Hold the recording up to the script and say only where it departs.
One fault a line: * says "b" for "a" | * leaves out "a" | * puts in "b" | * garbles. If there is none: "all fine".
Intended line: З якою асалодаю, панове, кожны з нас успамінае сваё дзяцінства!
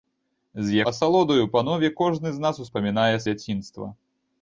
* leaves out "якою"
* leaves out "сваё"